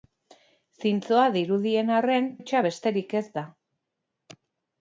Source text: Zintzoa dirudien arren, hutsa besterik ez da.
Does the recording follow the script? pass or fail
pass